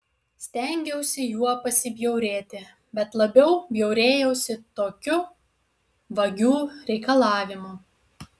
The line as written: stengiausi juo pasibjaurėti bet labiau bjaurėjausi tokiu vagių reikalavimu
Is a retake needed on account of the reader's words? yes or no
no